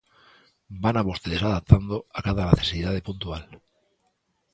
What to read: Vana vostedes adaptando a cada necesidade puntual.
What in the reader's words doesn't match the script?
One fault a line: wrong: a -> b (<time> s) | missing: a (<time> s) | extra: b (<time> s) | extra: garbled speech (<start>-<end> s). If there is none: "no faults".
no faults